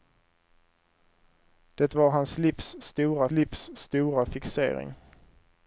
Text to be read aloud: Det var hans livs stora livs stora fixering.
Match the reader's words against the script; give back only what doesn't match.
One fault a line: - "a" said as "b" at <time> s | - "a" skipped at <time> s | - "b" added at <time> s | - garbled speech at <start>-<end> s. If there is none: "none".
none